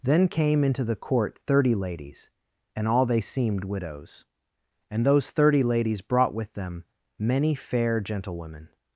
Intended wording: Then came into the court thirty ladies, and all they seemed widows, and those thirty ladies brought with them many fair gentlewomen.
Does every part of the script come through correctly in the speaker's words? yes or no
yes